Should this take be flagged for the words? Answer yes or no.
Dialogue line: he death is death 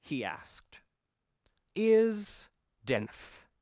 yes